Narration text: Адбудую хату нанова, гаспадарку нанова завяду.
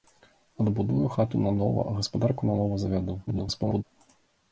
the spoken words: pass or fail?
fail